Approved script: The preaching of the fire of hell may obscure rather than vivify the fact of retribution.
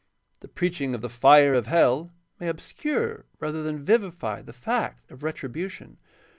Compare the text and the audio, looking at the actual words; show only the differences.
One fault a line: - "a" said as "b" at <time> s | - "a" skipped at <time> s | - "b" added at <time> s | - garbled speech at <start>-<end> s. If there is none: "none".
none